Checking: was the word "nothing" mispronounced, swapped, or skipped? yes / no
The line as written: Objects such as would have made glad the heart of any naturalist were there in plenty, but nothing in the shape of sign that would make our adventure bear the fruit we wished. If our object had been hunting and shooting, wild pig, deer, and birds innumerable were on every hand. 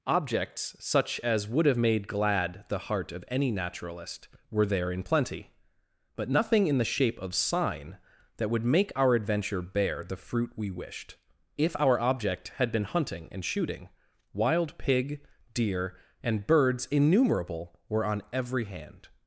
no